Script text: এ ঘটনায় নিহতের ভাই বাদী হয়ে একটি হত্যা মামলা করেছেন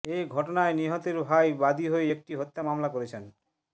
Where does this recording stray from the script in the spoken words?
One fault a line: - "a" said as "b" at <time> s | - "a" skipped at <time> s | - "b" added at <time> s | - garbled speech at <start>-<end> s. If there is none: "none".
none